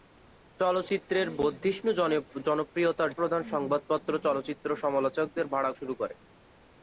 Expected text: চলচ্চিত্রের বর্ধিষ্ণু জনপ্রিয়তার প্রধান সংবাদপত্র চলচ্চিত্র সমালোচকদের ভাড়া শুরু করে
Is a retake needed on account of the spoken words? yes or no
no